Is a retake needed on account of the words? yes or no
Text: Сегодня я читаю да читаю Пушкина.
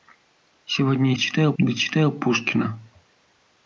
no